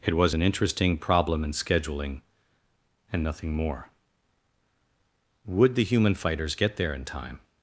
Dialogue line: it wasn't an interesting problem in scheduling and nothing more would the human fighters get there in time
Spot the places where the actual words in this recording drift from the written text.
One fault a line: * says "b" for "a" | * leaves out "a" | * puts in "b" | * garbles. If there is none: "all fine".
* says "was" for "wasn't"